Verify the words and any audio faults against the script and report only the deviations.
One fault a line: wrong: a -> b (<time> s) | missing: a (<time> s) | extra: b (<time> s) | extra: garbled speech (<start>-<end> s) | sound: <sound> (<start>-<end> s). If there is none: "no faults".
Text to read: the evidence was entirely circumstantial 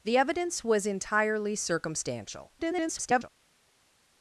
extra: garbled speech (2.6-3.3 s)